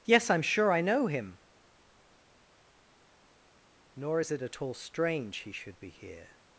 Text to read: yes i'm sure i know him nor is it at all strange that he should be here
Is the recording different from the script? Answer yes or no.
yes